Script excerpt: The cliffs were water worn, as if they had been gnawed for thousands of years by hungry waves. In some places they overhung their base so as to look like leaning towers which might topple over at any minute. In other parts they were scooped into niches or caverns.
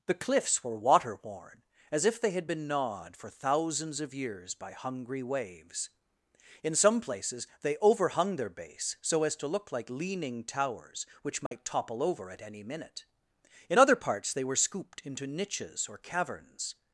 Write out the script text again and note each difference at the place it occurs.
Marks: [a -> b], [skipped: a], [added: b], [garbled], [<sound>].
The cliffs were water worn, as if they had been gnawed for thousands of years by hungry waves. In some places they overhung their base so as to look like leaning towers which might [dropout] topple over at any minute. In other parts they were scooped into niches or caverns.